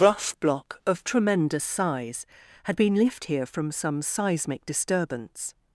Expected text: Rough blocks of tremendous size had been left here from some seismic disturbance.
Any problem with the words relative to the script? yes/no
yes